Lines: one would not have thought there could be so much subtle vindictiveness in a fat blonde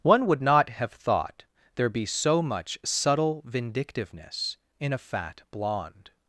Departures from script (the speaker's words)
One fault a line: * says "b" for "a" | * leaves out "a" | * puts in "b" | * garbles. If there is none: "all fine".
* leaves out "could"